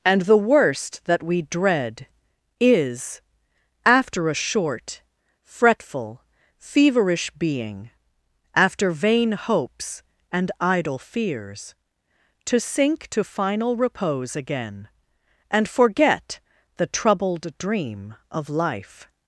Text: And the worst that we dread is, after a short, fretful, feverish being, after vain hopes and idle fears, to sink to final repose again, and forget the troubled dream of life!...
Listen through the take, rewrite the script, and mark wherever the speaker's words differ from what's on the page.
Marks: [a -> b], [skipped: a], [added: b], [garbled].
And the worst that we dread is, after a short, fretful, feverish being, after vain hopes and idle fears, to sink to final repose again, and forget the troubled dream of life!...